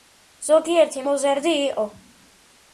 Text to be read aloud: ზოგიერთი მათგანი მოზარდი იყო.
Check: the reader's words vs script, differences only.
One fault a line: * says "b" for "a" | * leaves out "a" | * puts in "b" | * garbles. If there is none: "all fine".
* leaves out "მათგანი"